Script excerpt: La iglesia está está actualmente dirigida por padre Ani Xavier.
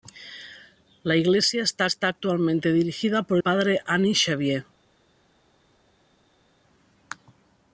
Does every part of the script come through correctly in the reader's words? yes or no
yes